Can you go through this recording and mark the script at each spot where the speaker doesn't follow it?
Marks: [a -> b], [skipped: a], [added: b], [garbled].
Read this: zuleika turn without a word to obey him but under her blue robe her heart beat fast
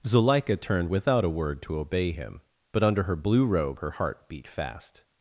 zuleika [turn -> turned] without a word to obey him but under her blue robe her heart beat fast